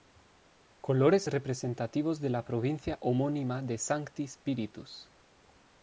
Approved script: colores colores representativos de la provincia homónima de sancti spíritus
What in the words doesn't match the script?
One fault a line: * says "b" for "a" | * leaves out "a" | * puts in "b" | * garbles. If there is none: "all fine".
* leaves out "colores"